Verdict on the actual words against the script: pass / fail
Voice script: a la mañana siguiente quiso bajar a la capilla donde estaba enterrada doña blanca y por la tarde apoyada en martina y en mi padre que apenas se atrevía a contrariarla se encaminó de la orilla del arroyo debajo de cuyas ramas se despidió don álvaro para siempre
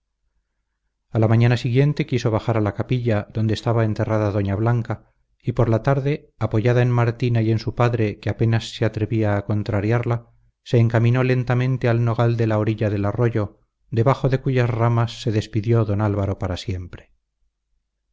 fail